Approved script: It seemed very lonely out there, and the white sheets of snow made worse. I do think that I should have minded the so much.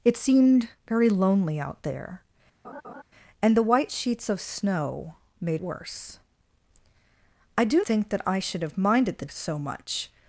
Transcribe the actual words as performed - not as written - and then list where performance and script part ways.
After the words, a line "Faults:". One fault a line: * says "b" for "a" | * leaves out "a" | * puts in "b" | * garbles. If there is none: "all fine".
It seemed very lonely out there, and the white sheets of snow made worse. I do think that I should have minded the so much.
Faults:
all fine